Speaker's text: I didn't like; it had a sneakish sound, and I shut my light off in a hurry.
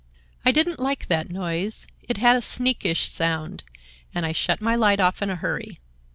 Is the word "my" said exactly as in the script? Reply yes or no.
yes